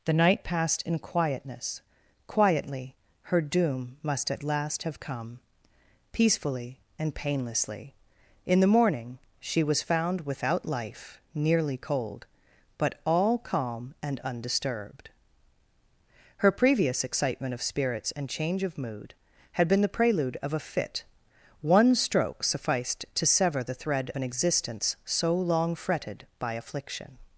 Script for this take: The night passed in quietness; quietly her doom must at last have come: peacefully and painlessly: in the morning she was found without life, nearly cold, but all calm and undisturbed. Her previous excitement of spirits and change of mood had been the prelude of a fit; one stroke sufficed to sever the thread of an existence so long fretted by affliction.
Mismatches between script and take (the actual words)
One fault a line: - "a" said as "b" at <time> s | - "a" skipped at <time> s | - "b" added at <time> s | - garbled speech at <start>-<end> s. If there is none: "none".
- "of" skipped at 24.1 s